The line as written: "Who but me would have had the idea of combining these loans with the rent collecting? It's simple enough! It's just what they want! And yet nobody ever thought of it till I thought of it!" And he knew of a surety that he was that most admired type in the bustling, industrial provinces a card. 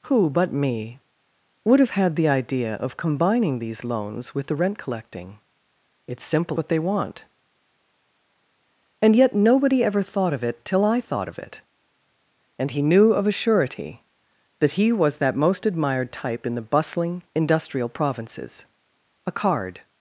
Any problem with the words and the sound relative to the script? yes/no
yes